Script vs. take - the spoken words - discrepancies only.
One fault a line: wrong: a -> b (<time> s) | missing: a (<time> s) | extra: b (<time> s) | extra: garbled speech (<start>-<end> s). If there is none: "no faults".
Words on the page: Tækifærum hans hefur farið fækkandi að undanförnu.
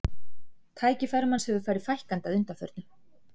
no faults